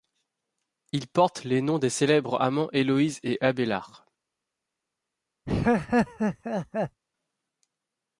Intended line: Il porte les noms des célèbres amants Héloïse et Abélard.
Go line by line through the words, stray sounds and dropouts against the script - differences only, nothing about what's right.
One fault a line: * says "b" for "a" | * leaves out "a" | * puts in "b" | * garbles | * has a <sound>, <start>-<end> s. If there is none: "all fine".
* has a laugh, 5.5-7.0 s